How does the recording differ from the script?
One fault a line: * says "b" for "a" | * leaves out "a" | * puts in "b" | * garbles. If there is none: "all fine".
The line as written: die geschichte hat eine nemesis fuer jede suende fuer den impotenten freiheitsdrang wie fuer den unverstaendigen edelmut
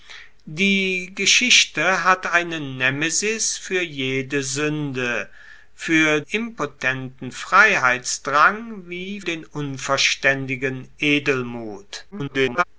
* leaves out "den"
* leaves out "fuer"
* garbles